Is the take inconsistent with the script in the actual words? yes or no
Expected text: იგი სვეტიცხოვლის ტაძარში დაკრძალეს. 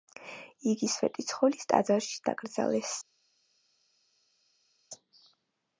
no